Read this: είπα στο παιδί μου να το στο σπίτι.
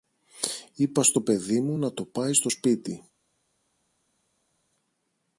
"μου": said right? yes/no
yes